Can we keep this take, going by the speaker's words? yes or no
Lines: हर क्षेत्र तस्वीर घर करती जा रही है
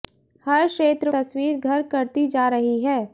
yes